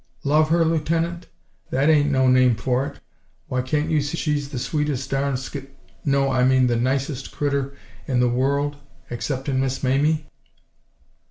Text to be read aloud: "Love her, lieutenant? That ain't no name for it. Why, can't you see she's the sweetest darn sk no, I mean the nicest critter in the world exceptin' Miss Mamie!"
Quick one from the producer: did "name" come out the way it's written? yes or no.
yes